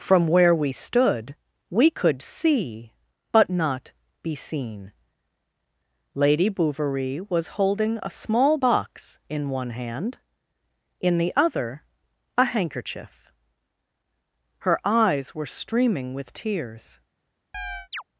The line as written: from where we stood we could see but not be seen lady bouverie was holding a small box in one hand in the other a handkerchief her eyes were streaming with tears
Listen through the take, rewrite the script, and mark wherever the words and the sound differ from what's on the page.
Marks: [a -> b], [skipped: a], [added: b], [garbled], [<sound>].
from where we stood we could see but not be seen lady bouverie was holding a small box in one hand in the other a handkerchief her eyes were streaming with tears [chirp]